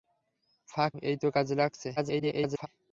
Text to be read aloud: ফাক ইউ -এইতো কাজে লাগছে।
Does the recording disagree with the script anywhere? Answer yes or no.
yes